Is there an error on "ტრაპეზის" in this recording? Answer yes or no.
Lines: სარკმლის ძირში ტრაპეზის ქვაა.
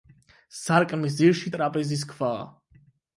no